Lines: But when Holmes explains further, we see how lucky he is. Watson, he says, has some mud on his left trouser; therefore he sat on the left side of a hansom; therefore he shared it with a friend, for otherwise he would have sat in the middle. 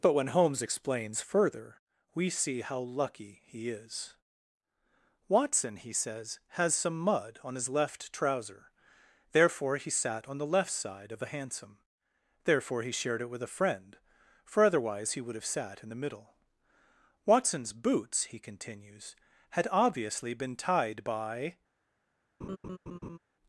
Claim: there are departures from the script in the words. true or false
true